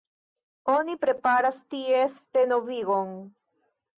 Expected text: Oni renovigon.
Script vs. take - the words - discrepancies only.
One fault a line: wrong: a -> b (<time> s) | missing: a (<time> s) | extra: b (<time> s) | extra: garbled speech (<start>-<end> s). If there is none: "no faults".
extra: preparas ties (1.0 s)